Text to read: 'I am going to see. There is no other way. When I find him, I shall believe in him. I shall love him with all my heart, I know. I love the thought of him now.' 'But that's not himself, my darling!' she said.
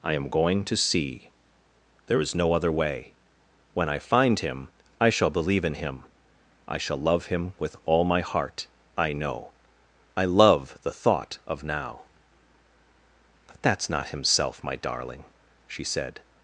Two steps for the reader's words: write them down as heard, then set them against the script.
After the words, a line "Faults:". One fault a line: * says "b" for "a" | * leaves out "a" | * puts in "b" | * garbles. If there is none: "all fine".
'I am going to see. There is no other way. When I find him, I shall believe in him. I shall love him with all my heart, I know. I love the thought of now.' 'But that's not himself, my darling!' she said.
Faults:
* leaves out "him"